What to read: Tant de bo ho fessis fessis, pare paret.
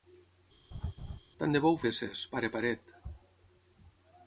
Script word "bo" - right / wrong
right